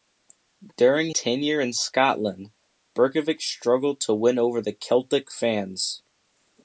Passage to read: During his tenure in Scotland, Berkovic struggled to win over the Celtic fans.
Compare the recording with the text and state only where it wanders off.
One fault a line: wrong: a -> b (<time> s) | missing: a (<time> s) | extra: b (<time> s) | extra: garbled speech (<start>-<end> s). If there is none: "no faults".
missing: his (1.1 s)